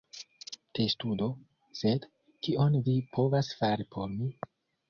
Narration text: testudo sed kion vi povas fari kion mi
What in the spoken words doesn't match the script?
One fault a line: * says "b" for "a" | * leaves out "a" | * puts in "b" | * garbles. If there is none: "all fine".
* says "por" for "kion"